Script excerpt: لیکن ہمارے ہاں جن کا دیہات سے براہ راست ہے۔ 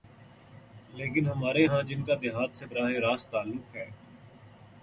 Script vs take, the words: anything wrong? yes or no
yes